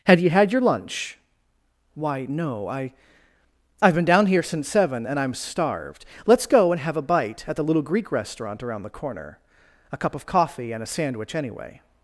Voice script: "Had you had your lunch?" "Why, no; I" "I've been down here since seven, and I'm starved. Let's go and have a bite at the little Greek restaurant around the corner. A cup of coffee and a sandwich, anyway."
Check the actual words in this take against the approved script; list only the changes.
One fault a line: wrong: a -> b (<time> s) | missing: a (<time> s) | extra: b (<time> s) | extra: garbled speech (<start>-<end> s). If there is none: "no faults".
no faults